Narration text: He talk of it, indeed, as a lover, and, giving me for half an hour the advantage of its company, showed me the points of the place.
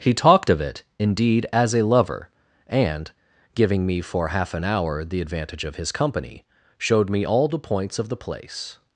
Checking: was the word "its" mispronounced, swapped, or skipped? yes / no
yes